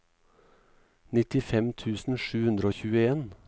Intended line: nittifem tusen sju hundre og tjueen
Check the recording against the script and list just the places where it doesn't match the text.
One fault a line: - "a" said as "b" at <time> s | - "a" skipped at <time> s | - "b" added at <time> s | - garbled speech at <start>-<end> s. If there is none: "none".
none